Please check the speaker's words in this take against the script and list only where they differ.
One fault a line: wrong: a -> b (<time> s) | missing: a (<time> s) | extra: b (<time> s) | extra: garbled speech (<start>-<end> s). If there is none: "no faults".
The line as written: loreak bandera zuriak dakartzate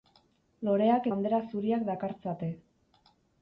no faults